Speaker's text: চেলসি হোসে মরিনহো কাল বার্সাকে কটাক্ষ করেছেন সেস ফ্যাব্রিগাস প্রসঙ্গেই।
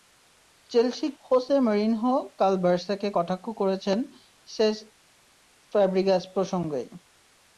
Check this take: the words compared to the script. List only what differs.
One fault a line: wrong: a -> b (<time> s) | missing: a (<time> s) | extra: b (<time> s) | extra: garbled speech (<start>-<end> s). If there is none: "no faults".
no faults